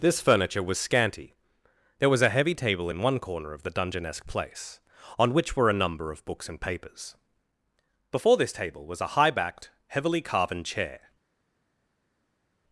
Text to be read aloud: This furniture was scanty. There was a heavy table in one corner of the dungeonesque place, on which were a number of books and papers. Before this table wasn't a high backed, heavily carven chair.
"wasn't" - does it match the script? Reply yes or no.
no